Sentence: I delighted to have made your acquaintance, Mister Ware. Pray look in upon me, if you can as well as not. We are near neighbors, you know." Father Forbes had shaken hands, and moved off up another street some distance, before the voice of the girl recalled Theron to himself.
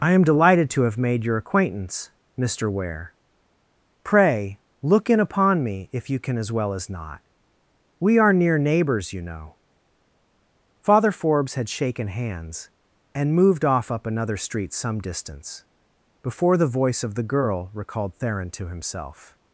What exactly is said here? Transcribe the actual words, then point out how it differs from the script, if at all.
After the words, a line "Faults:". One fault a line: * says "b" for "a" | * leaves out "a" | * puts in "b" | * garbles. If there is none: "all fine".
I am delighted to have made your acquaintance, Mister Ware. Pray look in upon me, if you can as well as not. We are near neighbors, you know." Father Forbes had shaken hands, and moved off up another street some distance, before the voice of the girl recalled Theron to himself.
Faults:
* puts in "am"